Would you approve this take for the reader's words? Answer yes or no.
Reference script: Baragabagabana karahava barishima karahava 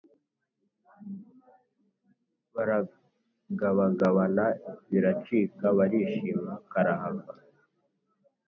no